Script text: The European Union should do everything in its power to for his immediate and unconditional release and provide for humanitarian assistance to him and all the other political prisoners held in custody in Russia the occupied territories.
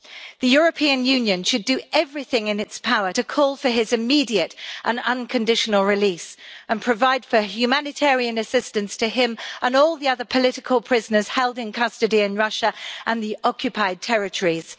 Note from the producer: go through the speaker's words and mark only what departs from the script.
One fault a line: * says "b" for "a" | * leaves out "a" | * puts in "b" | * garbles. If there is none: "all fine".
* puts in "call"
* puts in "and"